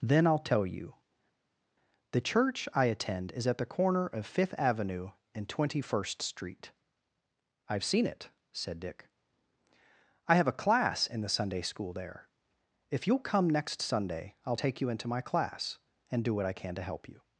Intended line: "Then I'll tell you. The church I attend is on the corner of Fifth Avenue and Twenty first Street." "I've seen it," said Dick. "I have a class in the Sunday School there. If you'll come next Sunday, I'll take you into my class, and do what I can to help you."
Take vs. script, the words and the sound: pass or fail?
fail